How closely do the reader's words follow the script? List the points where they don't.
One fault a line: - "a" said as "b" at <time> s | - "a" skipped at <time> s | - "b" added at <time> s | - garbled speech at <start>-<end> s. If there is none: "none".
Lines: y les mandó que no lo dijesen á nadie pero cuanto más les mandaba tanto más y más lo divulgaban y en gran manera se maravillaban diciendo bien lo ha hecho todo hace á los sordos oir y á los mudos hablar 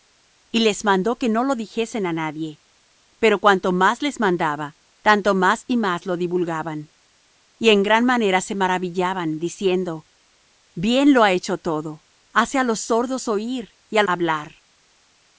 - "los mudos" skipped at 14.0 s